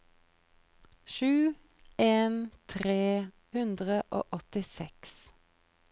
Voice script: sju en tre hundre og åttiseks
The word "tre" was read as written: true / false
true